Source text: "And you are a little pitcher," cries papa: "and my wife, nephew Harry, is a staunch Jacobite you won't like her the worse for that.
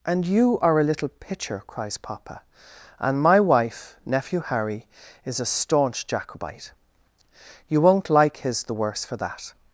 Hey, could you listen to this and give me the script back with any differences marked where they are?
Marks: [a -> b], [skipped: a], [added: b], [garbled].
"And you are a little pitcher," cries papa: "and my wife, nephew Harry, is a staunch Jacobite you won't like [her -> his] the worse for that.